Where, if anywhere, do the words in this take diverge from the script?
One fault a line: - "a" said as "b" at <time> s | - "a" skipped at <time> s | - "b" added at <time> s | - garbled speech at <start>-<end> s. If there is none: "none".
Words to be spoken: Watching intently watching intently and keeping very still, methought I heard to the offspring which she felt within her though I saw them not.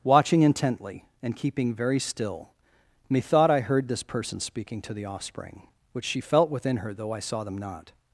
- "watching intently" skipped at 1.1 s
- "this person speaking" added at 3.9 s